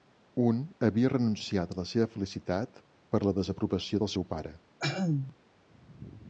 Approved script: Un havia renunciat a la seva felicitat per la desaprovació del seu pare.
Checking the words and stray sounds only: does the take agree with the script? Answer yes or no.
no